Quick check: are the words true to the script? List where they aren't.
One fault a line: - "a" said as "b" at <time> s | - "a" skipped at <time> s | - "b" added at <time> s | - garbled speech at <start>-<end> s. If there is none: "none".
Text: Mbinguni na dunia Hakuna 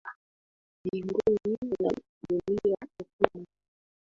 none